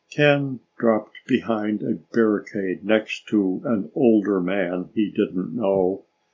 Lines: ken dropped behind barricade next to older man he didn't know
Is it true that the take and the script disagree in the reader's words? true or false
true